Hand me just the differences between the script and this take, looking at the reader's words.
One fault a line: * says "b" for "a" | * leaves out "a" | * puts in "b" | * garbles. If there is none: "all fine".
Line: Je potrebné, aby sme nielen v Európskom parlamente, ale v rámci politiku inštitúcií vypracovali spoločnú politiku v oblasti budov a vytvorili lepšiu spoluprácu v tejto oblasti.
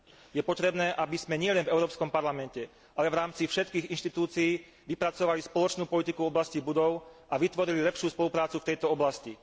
* says "všetkých" for "politiku"